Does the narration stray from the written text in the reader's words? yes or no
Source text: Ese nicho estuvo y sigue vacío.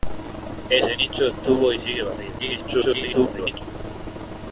yes